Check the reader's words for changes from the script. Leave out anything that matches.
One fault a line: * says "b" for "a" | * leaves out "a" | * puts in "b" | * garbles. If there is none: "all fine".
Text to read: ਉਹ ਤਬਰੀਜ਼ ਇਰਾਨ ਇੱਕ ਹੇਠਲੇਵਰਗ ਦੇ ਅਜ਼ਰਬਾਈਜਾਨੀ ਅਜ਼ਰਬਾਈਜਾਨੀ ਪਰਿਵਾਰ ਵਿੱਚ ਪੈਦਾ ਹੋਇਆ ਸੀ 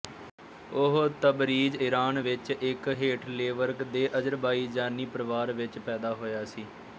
* puts in "ਵਿੱਚ"
* leaves out "ਅਜ਼ਰਬਾਈਜਾਨੀ"